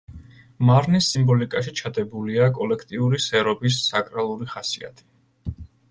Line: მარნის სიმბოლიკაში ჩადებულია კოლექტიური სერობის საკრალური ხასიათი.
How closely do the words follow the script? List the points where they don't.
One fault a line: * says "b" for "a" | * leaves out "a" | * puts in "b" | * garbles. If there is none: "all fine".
all fine